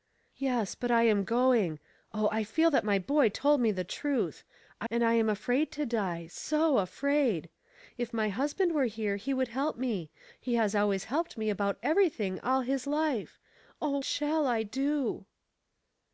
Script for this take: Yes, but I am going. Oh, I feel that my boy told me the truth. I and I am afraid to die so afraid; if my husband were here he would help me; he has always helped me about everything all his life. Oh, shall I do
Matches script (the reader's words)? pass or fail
pass